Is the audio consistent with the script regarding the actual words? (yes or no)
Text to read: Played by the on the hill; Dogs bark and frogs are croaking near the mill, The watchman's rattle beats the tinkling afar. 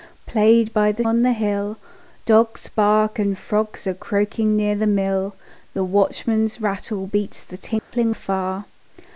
yes